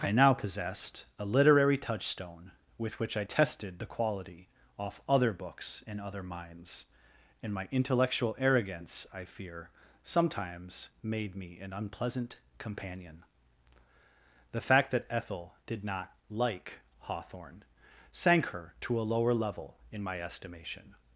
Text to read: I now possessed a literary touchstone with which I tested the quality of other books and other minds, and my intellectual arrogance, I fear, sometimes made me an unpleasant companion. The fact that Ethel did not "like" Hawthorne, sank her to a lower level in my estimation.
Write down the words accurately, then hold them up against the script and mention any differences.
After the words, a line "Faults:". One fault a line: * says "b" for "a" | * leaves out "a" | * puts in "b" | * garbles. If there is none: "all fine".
I now possessed a literary touchstone with which I tested the quality off other books and other minds, and my intellectual arrogance, I fear, sometimes made me an unpleasant companion. The fact that Ethel did not "like" Hawthorne, sank her to a lower level in my estimation.
Faults:
* says "off" for "of"